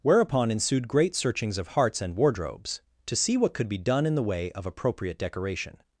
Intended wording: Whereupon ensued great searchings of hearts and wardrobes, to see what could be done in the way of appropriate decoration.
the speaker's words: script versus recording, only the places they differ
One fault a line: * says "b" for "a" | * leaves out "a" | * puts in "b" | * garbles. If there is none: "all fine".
all fine